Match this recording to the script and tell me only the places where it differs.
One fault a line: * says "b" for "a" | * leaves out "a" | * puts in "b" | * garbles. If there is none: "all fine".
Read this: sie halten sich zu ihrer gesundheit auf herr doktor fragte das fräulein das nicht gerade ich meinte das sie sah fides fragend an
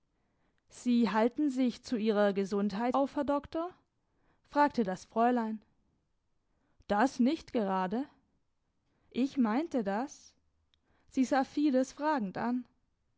all fine